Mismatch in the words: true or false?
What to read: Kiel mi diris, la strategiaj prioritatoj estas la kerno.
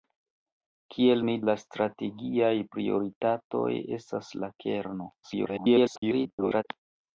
true